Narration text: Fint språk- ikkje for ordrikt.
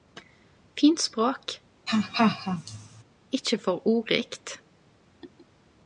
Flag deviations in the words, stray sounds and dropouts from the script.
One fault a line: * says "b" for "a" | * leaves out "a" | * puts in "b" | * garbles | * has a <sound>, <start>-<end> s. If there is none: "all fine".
* has a laugh, 1.9-3.0 s